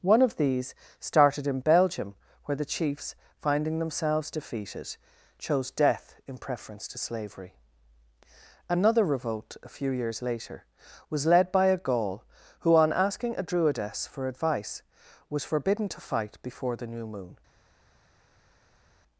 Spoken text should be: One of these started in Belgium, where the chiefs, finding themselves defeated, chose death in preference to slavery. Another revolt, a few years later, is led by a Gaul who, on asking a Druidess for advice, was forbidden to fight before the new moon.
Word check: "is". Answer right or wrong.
wrong